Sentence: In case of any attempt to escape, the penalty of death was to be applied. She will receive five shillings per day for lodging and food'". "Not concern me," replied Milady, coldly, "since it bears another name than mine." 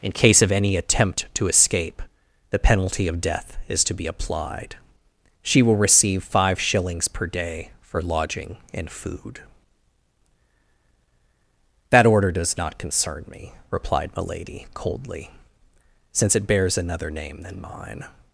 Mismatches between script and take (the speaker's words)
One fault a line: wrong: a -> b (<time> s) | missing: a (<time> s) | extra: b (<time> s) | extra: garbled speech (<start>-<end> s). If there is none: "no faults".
wrong: was -> is (3.7 s)
extra: That order does (11.9 s)